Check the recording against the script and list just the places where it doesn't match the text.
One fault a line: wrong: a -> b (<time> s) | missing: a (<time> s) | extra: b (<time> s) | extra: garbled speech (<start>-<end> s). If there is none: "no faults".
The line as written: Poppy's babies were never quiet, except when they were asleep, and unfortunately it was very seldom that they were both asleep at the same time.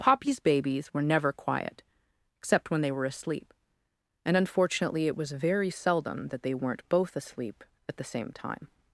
wrong: were -> weren't (6.5 s)